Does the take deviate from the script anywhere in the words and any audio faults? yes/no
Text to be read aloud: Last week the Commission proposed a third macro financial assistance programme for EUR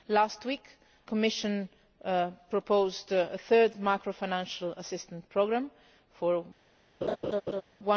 yes